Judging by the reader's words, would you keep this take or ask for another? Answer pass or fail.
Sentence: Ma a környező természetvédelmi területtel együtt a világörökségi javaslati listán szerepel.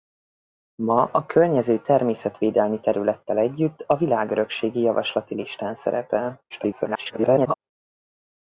fail